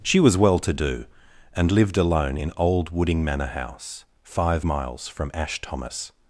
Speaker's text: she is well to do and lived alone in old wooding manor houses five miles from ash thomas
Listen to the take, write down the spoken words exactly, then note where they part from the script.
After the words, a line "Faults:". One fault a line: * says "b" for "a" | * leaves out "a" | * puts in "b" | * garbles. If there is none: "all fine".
she was well to do and lived alone in old wooding manor house five miles from ash thomas
Faults:
* says "was" for "is"
* says "house" for "houses"